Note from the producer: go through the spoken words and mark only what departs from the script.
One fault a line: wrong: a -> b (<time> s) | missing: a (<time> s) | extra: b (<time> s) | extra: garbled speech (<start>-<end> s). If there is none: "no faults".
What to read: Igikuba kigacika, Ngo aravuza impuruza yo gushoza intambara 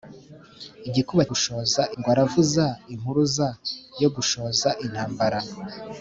wrong: kigacika -> gushoza (1.3 s)